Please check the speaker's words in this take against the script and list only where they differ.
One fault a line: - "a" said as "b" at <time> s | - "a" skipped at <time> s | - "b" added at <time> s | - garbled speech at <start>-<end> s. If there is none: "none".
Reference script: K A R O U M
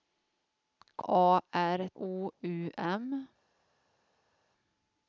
none